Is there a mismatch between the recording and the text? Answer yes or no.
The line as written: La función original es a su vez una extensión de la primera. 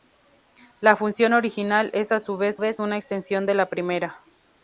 yes